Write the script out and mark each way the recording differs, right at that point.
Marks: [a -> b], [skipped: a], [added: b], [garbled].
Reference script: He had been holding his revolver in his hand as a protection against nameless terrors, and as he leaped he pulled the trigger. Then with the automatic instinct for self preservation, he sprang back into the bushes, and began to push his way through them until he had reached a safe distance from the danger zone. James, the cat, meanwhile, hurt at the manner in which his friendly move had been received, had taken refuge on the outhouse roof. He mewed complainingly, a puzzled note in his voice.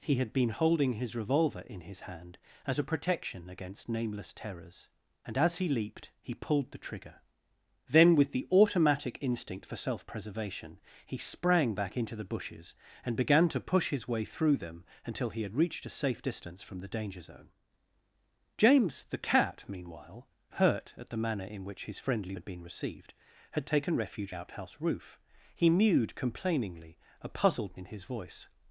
He had been holding his revolver in his hand as a protection against nameless terrors, and as he leaped he pulled the trigger. Then with the automatic instinct for self preservation, he sprang back into the bushes, and began to push his way through them until he had reached a safe distance from the danger zone. James, the cat, meanwhile, hurt at the manner in which his friendly [skipped: move] had been received, had taken refuge [skipped: on the] outhouse roof. He mewed complainingly, a puzzled [skipped: note] in his voice.